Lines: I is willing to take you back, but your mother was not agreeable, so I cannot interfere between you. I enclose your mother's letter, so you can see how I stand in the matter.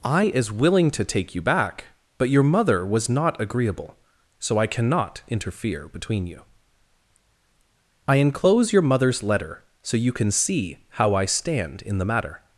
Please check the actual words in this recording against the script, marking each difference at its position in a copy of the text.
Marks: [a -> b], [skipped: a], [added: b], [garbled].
I is willing to take you back, but your mother was not agreeable, so I cannot interfere between you. I enclose your mother's letter, so you can see how I stand in the matter.